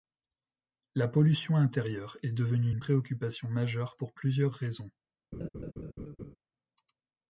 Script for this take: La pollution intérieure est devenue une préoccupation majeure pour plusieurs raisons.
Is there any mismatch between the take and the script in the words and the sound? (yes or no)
yes